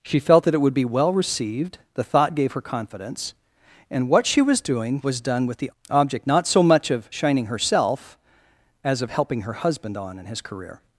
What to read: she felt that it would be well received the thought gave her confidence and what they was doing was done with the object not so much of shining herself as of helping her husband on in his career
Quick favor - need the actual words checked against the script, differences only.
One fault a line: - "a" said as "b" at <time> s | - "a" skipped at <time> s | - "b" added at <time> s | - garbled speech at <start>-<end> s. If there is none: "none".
- "they" said as "she" at 4.2 s